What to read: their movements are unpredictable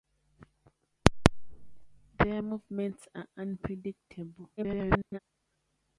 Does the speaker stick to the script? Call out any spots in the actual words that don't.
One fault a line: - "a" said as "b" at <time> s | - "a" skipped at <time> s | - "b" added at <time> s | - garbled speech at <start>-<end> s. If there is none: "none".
- garbled speech at 4.6-5.2 s